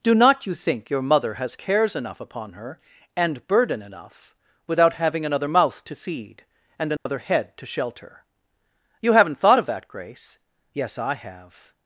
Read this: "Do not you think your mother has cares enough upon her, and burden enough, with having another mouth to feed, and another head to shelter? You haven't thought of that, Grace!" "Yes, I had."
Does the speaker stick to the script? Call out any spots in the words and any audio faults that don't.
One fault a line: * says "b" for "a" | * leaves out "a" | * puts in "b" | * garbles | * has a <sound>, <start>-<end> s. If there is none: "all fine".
* says "without" for "with"
* has a dropout, 7.0-7.1 s
* says "have" for "had"